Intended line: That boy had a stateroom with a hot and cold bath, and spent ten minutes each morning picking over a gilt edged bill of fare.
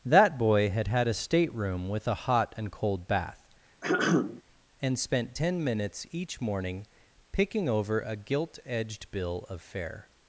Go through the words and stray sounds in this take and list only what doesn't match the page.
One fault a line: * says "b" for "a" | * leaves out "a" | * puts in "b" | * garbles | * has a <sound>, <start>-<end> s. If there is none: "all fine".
* puts in "had"
* has a throat clearing, 3.8-4.4 s